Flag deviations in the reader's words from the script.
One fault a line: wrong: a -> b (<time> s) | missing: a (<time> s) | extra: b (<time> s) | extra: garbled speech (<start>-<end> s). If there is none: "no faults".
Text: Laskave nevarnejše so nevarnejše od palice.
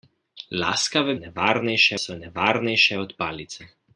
no faults